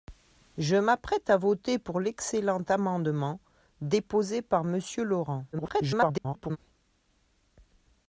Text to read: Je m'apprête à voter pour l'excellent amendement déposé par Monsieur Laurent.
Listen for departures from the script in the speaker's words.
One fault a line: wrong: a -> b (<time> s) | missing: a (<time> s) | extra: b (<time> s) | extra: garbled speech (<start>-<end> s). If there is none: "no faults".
extra: garbled speech (5.5-6.6 s)